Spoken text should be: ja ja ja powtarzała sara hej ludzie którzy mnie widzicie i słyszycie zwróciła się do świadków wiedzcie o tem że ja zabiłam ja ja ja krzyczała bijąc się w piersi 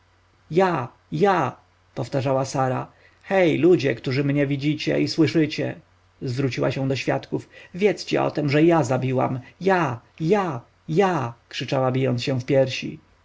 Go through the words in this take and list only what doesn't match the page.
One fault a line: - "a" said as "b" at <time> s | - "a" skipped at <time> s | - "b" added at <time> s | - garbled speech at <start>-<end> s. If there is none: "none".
- "ja" skipped at 1.6 s